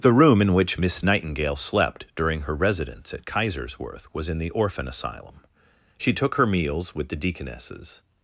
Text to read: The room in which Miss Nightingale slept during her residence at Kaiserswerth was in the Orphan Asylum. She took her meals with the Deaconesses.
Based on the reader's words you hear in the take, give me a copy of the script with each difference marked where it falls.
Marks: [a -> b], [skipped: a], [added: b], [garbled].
The room in which Miss Nightingale slept during her residence at Kaiserswerth was in the Orphan Asylum. She took her meals with the Deaconesses.